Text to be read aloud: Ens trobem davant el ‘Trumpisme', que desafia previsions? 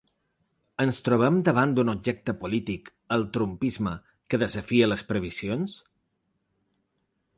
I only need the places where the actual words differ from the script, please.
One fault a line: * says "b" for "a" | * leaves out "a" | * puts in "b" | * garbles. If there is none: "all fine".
* puts in "d'un objecte polític"
* puts in "les"